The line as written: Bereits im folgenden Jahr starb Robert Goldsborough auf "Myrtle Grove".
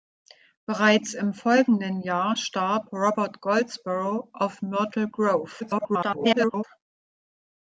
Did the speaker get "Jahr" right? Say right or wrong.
right